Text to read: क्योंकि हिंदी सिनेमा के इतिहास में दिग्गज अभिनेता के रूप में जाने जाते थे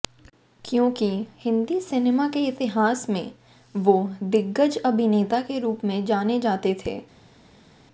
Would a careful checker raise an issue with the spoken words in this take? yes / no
yes